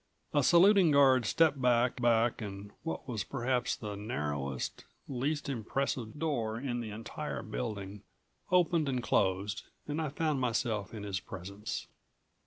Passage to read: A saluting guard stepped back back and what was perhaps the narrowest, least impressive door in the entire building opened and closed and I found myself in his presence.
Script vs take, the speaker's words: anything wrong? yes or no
no